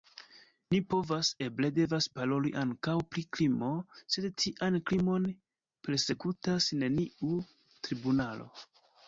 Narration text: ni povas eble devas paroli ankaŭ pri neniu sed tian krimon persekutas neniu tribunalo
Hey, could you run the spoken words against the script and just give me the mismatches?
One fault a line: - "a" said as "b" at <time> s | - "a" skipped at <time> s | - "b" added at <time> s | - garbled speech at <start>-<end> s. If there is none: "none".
- "neniu" said as "krimo" at 3.4 s